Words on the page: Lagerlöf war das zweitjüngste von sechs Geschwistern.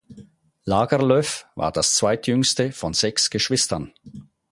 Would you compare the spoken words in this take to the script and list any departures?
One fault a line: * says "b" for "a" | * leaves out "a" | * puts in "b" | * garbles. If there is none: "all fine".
all fine